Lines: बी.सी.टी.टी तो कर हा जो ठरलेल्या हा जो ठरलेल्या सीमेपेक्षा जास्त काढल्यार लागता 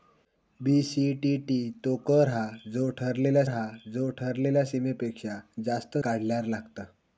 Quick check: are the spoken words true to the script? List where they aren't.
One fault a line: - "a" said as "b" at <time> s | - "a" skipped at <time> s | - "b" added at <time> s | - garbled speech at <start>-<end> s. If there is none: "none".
none